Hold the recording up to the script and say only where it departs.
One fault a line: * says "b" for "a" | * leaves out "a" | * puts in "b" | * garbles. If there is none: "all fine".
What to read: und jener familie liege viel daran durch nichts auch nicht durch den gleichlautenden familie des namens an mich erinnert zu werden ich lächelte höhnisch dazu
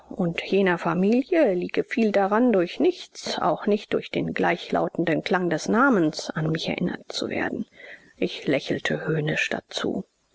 * says "klang" for "familie"